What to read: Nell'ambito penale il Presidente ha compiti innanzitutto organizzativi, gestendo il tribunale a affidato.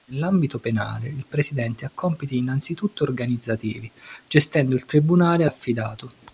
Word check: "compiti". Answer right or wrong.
right